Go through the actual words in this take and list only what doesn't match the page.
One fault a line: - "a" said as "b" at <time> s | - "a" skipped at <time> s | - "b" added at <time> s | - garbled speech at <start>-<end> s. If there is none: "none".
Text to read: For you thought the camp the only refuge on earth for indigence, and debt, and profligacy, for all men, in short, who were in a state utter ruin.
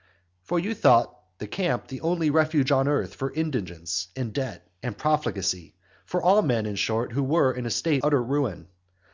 none